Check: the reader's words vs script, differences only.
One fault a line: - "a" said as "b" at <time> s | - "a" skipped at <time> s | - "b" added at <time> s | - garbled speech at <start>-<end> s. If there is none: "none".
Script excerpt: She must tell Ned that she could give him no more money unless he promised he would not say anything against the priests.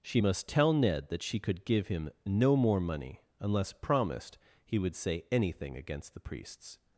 - "he" skipped at 3.7 s
- "not" skipped at 4.9 s